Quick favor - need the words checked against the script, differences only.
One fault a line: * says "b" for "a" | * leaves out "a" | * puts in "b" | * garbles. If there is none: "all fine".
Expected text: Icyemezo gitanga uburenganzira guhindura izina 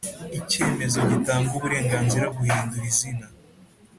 all fine